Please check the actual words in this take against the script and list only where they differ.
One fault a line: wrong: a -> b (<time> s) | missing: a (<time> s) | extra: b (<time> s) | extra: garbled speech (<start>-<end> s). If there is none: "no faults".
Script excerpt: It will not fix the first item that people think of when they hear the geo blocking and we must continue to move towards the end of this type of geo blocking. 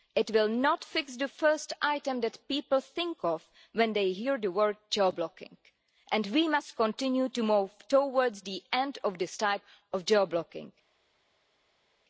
extra: word (4.5 s)